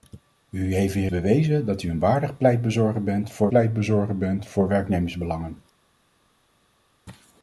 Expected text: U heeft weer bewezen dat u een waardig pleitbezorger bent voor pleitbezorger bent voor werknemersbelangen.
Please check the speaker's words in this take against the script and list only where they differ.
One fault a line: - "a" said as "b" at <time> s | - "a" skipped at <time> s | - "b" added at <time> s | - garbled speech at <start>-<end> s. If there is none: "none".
none